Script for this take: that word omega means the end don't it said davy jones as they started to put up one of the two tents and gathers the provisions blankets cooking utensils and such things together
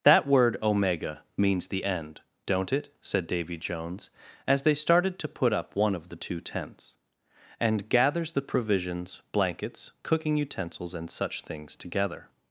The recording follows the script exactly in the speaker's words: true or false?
true